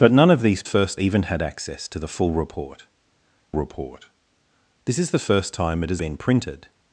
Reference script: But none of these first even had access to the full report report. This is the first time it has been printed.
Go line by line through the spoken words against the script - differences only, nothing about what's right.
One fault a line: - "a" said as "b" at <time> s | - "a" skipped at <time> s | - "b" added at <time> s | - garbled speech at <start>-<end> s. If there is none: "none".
none